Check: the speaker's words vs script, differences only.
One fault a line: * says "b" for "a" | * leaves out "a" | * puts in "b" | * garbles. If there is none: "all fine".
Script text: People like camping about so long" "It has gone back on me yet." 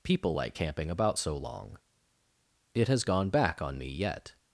all fine